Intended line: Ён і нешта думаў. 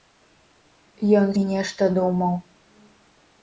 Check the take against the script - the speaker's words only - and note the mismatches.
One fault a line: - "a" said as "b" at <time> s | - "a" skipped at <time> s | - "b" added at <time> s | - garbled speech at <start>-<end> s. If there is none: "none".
none